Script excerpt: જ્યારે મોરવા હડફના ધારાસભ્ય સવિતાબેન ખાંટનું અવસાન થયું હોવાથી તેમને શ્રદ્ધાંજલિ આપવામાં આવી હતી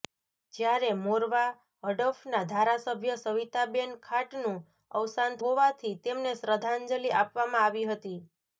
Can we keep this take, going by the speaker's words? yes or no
no